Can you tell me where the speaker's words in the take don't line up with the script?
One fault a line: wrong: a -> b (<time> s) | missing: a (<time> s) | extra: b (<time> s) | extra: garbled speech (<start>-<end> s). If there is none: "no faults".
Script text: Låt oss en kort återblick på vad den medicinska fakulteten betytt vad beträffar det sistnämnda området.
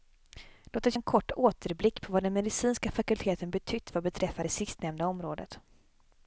no faults